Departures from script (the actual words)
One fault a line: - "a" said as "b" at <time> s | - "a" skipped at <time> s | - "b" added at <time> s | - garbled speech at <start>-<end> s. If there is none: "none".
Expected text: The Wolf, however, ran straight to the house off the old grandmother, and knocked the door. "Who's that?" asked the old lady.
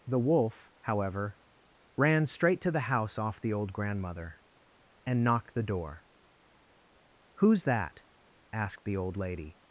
none